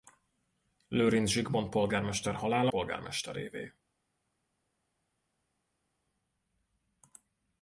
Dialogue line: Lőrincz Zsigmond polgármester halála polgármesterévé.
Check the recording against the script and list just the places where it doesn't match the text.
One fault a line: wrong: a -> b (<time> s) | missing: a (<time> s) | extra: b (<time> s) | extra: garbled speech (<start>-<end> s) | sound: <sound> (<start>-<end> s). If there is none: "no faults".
no faults